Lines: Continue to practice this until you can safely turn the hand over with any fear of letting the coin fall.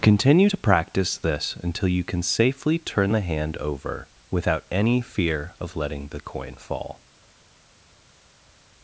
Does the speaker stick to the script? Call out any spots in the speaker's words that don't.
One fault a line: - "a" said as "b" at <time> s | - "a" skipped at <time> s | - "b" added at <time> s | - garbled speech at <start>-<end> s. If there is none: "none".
- "with" said as "without" at 4.3 s